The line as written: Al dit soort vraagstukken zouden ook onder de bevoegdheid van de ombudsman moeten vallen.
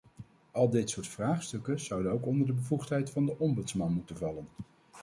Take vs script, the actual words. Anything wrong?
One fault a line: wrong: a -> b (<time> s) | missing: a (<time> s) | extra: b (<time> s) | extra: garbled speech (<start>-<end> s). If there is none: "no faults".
no faults